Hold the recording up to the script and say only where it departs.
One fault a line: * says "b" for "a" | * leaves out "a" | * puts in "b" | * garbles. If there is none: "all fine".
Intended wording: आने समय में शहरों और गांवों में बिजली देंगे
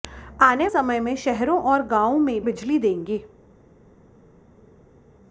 all fine